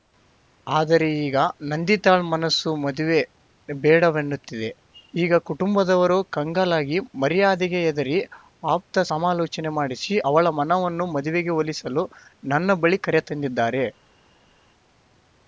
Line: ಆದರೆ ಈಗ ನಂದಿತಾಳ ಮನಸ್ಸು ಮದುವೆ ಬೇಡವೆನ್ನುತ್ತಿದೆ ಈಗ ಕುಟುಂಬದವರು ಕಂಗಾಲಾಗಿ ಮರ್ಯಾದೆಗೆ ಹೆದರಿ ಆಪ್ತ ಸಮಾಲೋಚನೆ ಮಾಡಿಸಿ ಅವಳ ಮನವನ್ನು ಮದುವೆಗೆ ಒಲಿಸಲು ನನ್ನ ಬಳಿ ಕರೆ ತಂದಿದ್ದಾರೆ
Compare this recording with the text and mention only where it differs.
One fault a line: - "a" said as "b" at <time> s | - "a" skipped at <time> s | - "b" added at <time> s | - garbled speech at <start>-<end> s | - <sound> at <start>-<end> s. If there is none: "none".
none